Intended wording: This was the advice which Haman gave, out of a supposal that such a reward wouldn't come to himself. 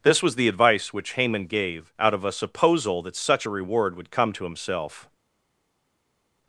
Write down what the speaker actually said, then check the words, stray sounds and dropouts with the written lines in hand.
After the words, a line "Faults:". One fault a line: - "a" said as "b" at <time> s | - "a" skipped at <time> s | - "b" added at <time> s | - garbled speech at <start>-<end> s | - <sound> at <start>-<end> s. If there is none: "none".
This was the advice which Haman gave, out of a supposal that such a reward would come to himself.
Faults:
- "wouldn't" said as "would" at 4.0 s